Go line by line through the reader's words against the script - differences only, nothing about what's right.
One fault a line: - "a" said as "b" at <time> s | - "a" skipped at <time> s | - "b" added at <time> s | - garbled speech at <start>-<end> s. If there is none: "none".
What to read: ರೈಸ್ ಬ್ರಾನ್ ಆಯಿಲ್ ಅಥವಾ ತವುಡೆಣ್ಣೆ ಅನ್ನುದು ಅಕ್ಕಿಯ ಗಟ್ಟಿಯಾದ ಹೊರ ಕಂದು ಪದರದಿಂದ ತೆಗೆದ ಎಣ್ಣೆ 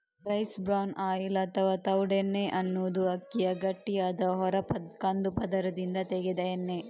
none